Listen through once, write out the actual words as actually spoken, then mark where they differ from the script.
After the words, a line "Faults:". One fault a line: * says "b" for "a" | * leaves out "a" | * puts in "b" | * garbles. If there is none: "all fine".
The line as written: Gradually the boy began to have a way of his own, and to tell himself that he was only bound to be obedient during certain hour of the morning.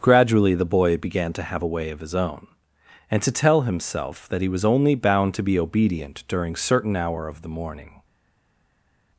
Gradually the boy began to have a way of his own, and to tell himself that he was only bound to be obedient during certain hour of the morning.
Faults:
all fine